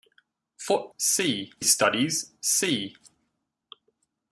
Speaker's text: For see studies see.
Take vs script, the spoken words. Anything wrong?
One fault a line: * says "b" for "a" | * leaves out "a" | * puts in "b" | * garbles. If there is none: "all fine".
all fine